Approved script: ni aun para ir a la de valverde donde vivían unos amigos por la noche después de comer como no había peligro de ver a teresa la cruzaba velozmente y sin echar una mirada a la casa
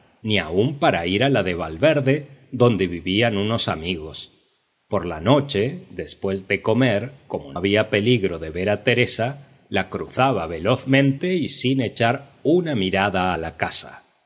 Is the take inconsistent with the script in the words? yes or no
yes